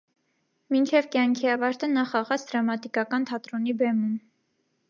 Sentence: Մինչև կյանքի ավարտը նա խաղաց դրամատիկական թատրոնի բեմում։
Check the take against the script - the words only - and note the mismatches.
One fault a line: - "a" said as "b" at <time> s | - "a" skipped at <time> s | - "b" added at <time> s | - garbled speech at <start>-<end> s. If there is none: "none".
none